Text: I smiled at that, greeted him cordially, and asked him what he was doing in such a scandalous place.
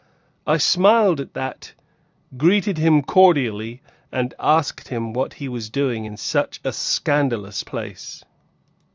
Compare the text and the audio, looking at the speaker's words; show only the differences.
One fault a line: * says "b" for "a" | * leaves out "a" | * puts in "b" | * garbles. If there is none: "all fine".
all fine